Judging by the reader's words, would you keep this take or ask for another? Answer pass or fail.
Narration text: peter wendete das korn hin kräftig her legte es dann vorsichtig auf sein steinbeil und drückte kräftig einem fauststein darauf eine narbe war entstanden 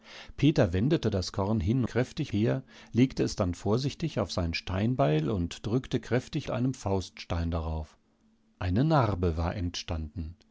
pass